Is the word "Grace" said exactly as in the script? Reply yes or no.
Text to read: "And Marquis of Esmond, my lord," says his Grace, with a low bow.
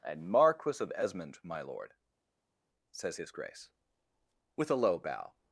yes